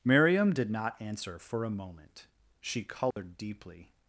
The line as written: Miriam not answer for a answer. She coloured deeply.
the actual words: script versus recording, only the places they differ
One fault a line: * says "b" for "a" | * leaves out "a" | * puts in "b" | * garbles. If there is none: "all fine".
* puts in "did"
* says "moment" for "answer"